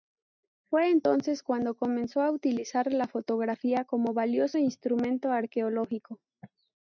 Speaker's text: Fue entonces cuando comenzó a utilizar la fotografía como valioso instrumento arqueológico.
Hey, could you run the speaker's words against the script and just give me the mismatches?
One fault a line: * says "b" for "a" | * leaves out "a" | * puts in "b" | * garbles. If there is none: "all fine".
all fine